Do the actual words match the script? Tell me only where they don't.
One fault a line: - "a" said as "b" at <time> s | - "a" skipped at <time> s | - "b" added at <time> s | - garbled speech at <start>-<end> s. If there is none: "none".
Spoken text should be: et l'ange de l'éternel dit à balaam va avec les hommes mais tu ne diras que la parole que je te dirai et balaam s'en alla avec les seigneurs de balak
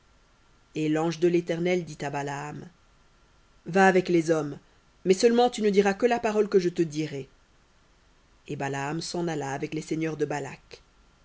- "seulement" added at 5.1 s